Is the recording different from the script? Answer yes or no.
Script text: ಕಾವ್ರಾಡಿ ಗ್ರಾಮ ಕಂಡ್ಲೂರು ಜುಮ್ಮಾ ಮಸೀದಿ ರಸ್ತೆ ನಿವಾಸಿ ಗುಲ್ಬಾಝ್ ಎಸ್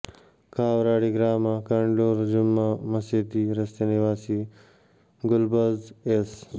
no